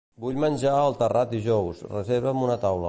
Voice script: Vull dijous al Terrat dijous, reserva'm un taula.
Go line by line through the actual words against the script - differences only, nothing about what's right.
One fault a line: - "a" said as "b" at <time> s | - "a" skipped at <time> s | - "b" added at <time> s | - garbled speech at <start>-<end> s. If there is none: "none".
- "dijous" said as "menjar" at 0.4 s
- "un" said as "una" at 2.5 s